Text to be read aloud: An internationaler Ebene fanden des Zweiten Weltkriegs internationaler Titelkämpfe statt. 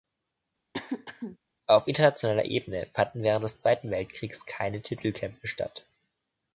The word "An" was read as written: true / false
false